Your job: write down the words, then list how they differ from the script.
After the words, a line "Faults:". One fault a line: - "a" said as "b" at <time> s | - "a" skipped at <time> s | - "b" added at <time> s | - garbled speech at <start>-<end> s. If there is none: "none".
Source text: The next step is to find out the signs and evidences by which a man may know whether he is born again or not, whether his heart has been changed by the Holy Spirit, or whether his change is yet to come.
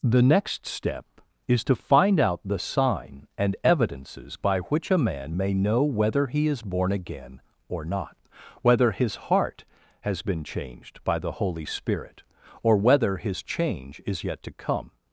The next step is to find out the sign and evidences by which a man may know whether he is born again or not, whether his heart has been changed by the Holy Spirit, or whether his change is yet to come.
Faults:
- "signs" said as "sign" at 2.6 s